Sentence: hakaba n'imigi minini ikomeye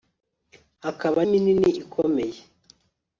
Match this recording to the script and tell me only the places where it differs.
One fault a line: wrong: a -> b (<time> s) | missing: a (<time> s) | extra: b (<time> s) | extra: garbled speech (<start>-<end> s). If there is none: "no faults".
missing: n'imigi (1.2 s)